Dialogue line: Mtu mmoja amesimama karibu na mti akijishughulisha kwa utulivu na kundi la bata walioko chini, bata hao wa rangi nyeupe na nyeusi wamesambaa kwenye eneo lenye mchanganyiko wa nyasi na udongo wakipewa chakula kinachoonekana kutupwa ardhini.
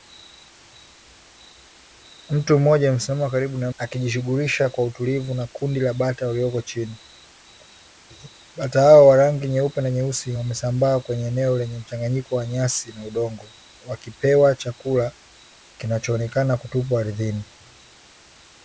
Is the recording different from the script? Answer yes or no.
yes